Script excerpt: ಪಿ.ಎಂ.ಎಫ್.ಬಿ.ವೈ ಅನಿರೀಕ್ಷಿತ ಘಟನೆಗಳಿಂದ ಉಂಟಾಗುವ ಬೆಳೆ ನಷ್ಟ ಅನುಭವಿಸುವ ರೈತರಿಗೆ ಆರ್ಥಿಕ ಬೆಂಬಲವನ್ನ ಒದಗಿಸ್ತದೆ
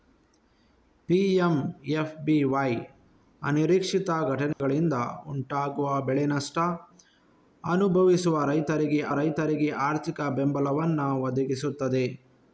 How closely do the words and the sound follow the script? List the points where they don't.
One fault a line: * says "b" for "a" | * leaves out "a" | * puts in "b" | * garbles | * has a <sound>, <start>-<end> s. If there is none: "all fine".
* has a dropout, 4.5-4.6 s
* puts in "ರೈತರಿಗೆ"